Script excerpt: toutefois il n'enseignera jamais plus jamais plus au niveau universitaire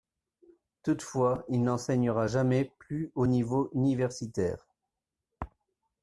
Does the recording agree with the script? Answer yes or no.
no